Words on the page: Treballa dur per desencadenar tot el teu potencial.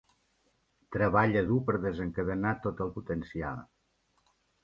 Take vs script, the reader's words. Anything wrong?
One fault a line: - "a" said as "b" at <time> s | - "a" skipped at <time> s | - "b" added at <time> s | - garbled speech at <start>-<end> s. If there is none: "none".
- "teu" skipped at 3.0 s